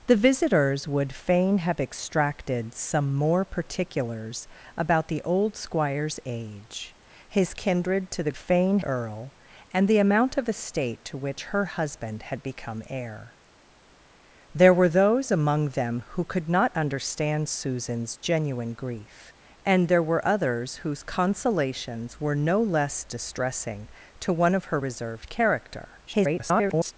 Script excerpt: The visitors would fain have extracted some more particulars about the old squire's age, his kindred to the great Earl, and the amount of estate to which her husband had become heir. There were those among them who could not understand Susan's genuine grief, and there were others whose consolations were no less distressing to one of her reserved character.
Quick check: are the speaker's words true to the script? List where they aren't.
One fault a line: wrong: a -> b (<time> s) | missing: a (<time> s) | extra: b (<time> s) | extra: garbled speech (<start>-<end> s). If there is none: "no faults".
wrong: great -> fain (8.3 s)
extra: garbled speech (26.1-26.9 s)